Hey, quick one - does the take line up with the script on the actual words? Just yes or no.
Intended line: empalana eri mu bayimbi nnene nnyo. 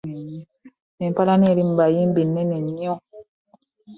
yes